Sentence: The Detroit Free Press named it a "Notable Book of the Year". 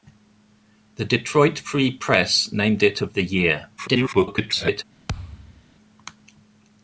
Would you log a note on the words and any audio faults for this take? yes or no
yes